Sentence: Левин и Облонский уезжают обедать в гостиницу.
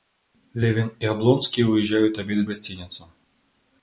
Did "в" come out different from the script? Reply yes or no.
yes